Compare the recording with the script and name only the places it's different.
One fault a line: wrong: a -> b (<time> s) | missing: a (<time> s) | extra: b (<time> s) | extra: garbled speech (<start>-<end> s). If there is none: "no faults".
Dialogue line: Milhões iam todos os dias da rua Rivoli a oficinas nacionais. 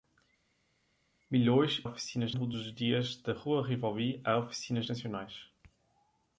wrong: iam -> oficinas (1.8 s)